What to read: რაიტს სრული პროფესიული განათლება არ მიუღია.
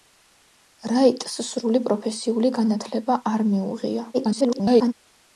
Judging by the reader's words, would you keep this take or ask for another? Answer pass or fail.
fail